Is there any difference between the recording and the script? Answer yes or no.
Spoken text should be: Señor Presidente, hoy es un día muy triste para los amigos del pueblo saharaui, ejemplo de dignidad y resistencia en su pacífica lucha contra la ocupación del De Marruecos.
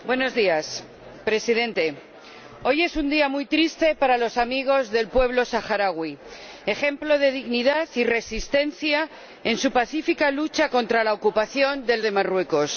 no